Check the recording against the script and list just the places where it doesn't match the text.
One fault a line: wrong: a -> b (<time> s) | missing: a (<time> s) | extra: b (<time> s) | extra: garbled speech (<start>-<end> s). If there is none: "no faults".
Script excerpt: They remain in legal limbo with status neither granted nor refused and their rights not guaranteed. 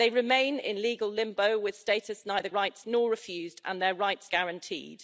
wrong: granted -> rights (2.5 s)
missing: not (4.3 s)